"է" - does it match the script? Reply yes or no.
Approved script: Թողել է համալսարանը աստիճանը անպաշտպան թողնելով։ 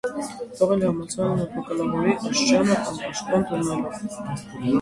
yes